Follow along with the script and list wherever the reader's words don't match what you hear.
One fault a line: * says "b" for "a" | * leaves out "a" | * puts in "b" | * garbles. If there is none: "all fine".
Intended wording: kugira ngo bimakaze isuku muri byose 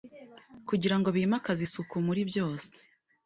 all fine